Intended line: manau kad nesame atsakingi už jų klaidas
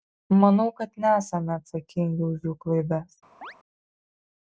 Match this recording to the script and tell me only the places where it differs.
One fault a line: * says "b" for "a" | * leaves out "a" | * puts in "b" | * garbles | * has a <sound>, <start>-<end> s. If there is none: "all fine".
* has a chirp, 3.4-3.5 s